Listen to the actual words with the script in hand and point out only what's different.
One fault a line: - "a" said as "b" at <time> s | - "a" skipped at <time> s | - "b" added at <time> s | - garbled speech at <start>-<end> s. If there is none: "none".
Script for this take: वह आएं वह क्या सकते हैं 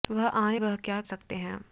none